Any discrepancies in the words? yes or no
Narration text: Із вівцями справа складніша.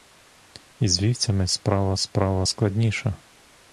yes